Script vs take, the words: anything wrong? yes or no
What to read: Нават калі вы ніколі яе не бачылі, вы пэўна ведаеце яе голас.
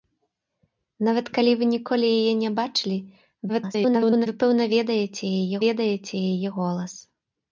yes